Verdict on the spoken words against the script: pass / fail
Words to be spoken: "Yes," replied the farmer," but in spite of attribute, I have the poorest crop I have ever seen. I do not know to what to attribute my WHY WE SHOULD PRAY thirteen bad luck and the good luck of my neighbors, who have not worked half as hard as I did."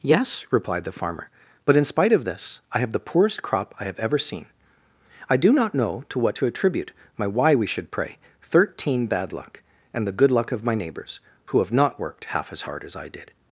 fail